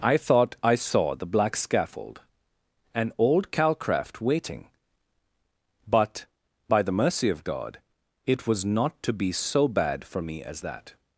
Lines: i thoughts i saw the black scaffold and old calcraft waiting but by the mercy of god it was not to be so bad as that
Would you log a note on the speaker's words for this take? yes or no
yes